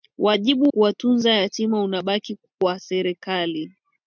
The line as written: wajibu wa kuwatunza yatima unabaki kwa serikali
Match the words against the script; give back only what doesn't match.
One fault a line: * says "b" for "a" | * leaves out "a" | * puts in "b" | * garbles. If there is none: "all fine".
* leaves out "wa"